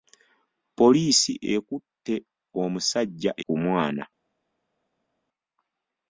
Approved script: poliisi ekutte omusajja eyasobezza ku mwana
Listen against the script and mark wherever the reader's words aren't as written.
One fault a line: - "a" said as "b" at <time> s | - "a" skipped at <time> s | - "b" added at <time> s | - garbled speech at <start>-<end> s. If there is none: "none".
- "eyasobezza" skipped at 3.3 s